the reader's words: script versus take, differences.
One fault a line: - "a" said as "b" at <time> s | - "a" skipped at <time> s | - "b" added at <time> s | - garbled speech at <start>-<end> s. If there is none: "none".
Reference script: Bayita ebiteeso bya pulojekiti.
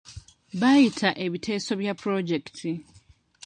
none